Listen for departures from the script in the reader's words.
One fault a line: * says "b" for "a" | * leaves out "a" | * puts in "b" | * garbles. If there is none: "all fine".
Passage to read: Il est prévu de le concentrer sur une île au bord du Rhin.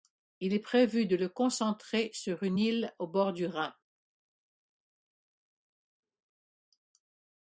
all fine